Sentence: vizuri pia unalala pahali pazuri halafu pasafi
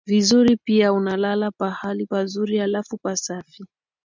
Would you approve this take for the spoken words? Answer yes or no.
yes